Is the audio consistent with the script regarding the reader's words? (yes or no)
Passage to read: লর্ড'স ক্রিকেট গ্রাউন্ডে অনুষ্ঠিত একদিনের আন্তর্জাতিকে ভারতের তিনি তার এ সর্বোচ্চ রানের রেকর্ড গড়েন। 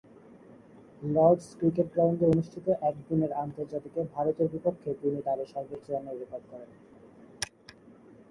no